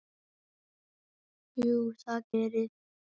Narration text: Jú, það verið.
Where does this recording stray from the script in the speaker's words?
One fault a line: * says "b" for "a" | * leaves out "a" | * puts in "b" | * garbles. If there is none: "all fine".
all fine